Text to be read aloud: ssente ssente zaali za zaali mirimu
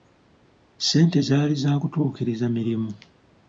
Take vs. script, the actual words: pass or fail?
fail